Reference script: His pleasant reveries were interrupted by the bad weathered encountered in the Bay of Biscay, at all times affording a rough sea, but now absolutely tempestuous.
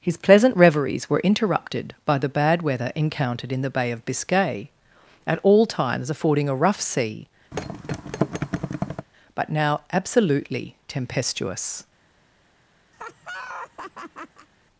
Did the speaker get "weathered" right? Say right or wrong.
wrong